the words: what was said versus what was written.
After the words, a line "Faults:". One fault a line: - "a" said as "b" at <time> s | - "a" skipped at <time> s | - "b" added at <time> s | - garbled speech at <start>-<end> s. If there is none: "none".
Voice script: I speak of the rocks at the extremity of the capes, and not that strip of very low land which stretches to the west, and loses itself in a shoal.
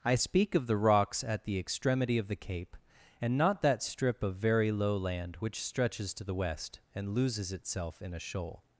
I speak of the rocks at the extremity of the cape, and not that strip of very low land which stretches to the west, and loses itself in a shoal.
Faults:
- "capes" said as "cape" at 2.4 s